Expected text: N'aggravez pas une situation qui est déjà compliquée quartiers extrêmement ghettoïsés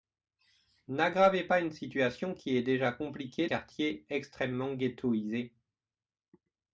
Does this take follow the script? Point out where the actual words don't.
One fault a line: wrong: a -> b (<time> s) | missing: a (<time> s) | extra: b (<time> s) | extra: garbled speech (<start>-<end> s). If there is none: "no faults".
no faults